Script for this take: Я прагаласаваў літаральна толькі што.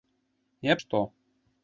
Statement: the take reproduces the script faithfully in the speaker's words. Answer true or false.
false